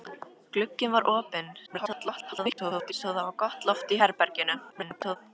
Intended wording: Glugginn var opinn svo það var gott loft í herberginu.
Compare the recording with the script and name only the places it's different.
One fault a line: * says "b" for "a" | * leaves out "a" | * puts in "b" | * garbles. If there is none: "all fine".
* garbles
* garbles